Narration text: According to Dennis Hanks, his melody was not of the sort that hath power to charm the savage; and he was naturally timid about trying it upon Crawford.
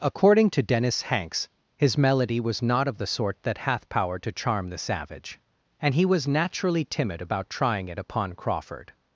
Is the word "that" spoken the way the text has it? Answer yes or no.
yes